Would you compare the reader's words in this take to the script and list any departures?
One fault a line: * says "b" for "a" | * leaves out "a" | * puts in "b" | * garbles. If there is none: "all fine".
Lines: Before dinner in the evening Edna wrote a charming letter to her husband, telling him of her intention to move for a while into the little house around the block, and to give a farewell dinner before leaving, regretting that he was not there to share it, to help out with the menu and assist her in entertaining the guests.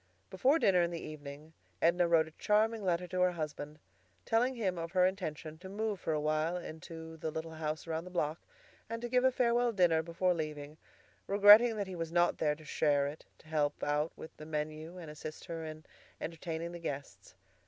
all fine